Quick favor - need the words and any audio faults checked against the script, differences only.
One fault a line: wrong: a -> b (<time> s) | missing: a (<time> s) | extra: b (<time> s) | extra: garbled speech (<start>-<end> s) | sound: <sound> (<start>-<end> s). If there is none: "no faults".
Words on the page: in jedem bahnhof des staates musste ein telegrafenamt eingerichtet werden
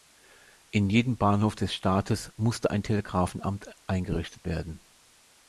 no faults